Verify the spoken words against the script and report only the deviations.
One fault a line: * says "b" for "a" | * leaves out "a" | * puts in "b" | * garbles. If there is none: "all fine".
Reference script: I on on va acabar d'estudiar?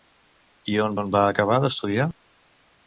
all fine